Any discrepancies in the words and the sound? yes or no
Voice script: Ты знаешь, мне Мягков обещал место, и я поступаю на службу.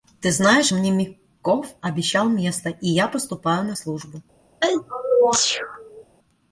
yes